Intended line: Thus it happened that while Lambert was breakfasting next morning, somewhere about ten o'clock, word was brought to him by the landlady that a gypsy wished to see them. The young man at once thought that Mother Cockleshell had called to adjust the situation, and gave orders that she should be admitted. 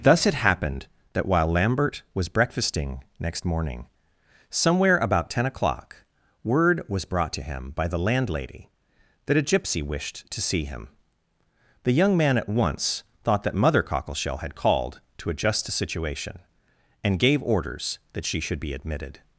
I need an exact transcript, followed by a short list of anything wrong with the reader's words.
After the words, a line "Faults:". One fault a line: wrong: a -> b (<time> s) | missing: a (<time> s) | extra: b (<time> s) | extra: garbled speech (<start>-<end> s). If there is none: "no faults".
Thus it happened that while Lambert was breakfasting next morning, somewhere about ten o'clock, word was brought to him by the landlady that a gypsy wished to see him. The young man at once thought that Mother Cockleshell had called to adjust the situation, and gave orders that she should be admitted.
Faults:
wrong: them -> him (10.6 s)